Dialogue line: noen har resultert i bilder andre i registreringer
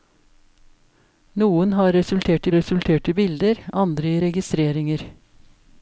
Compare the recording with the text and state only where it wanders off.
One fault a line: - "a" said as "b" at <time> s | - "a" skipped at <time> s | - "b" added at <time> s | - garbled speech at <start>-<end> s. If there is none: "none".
- "resultert" added at 2.6 s